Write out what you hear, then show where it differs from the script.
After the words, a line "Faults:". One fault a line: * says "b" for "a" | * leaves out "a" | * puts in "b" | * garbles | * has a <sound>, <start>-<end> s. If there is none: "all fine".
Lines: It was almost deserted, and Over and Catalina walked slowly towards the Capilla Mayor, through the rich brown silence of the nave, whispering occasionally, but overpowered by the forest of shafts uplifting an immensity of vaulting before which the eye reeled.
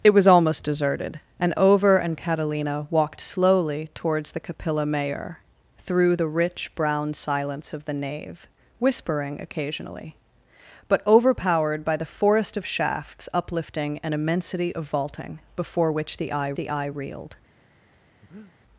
It was almost deserted, and Over and Catalina walked slowly towards the Capilla Mayor, through the rich brown silence of the nave, whispering occasionally, but overpowered by the forest of shafts uplifting an immensity of vaulting before which the eye the eye reeled.
Faults:
* puts in "the eye"
* has a breath, 18.2-18.5 s